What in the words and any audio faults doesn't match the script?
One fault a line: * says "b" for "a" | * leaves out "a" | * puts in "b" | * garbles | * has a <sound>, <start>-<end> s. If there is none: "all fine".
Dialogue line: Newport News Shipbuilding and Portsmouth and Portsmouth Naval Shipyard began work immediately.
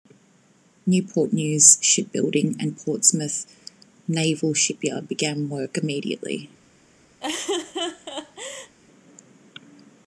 * leaves out "and Portsmouth"
* has a laugh, 7.2-8.7 s